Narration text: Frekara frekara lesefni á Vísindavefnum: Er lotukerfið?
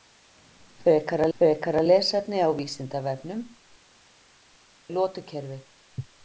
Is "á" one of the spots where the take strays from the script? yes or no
no